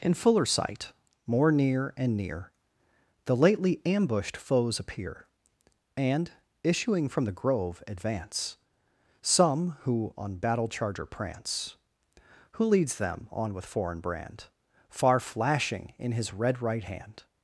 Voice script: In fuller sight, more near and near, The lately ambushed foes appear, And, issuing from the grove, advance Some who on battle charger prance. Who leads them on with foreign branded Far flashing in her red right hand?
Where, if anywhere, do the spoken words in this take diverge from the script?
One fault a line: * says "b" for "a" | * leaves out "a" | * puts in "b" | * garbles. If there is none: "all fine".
* says "brand" for "branded"
* says "his" for "her"